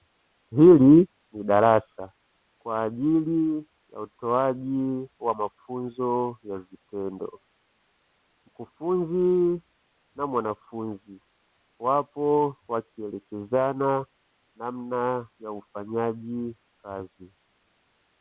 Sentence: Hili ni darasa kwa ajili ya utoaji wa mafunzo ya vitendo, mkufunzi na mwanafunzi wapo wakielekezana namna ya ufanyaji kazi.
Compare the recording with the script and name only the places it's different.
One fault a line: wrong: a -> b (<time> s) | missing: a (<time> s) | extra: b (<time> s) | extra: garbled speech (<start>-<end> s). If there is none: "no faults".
no faults